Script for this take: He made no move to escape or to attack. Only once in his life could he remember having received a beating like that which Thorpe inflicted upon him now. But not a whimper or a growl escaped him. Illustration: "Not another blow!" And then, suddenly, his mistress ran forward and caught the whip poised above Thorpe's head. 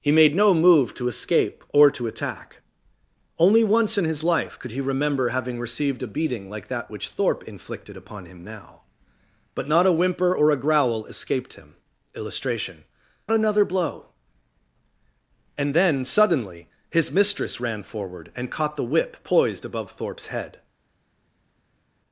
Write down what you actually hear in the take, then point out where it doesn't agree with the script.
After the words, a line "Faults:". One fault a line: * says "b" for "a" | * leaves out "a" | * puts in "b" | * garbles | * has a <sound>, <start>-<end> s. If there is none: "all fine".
He made no move to escape or to attack. Only once in his life could he remember having received a beating like that which Thorpe inflicted upon him now. But not a whimper or a growl escaped him. Illustration: "Another blow!" And then, suddenly, his mistress ran forward and caught the whip poised above Thorpe's head.
Faults:
* leaves out "Not"